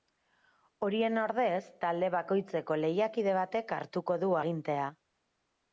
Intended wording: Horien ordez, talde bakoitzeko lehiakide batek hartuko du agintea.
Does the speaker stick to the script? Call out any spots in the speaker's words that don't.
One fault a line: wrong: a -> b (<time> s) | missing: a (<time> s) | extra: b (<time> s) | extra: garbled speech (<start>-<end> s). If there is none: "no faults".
no faults